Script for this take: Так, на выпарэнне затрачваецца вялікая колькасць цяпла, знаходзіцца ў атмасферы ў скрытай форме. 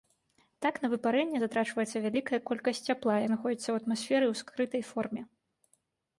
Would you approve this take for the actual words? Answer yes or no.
yes